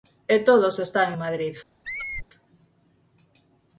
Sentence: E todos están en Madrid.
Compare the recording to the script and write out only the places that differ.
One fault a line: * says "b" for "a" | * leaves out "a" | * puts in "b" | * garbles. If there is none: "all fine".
* leaves out "en"